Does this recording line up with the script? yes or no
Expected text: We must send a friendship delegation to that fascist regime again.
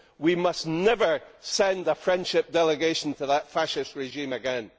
no